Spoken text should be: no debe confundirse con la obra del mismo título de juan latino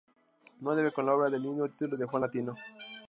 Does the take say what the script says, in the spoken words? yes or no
no